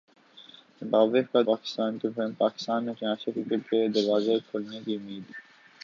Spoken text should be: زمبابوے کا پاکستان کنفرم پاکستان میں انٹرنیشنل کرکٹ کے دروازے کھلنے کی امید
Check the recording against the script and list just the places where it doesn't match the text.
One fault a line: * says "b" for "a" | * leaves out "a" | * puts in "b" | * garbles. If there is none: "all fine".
all fine